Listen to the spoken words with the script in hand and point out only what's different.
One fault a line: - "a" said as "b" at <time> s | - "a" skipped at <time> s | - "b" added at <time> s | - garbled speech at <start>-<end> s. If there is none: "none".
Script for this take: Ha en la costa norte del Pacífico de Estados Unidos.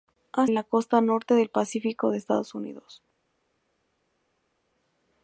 none